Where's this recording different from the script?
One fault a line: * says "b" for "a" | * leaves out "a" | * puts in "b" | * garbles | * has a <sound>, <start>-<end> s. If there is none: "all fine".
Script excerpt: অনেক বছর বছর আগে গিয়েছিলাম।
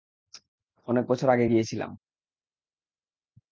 * leaves out "বছর"